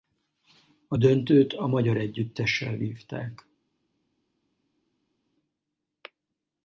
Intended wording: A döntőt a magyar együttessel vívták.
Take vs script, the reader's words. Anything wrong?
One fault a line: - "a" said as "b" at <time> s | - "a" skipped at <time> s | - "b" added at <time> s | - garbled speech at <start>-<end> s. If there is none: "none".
none